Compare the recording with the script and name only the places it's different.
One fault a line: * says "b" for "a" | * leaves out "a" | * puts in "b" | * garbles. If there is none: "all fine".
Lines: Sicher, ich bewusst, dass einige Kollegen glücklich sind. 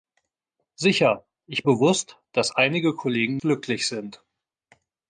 all fine